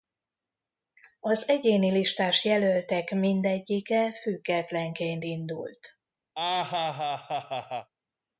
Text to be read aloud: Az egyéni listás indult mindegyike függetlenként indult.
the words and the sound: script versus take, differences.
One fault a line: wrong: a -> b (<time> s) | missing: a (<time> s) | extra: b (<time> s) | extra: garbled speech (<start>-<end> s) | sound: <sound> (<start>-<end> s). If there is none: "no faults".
wrong: indult -> jelöltek (2.5 s)
sound: laugh (6.4-7.9 s)